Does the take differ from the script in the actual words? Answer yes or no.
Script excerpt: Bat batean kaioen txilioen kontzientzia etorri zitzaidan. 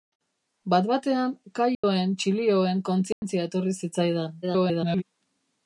yes